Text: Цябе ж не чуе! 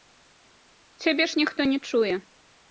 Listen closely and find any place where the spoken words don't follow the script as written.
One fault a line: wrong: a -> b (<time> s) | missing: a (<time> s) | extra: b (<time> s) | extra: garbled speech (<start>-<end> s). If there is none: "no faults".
extra: ніхто (1.4 s)